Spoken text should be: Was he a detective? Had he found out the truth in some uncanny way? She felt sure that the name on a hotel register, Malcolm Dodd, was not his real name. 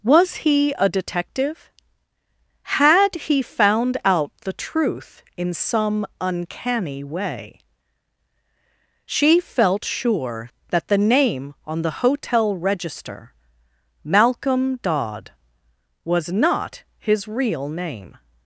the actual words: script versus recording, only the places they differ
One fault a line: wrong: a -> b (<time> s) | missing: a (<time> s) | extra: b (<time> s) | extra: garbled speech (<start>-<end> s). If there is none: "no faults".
wrong: a -> the (11.8 s)